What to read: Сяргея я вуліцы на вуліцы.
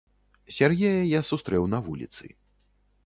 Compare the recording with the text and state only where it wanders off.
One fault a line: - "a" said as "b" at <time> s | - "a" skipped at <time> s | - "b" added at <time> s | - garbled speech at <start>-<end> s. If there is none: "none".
- "вуліцы" said as "сустрэў" at 1.3 s